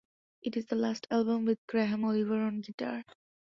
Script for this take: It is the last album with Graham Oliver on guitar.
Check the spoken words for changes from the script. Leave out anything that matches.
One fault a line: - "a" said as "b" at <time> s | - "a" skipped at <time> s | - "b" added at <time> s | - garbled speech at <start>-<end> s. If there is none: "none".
none